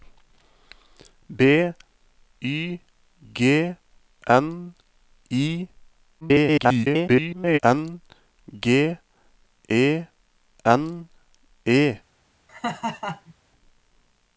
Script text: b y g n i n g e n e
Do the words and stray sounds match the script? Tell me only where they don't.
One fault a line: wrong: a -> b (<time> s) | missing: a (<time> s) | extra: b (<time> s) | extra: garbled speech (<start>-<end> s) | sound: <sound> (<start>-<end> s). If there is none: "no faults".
extra: garbled speech (6.2-7.6 s)
sound: laugh (12.5-13.3 s)